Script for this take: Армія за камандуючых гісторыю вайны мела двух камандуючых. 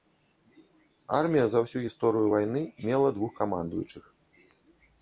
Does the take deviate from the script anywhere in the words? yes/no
yes